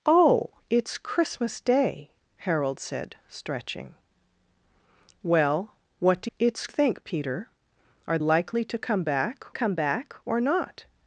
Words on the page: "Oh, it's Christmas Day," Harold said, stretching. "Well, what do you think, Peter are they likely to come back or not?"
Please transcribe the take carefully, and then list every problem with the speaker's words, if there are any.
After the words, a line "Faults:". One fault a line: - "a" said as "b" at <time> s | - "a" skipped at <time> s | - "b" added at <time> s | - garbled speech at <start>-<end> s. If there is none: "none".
"Oh, it's Christmas Day," Harold said, stretching. "Well, what do it's think, Peter are likely to come back come back or not?"
Faults:
- "you" said as "it's" at 6.4 s
- "they" skipped at 8.2 s
- "come back" added at 9.5 s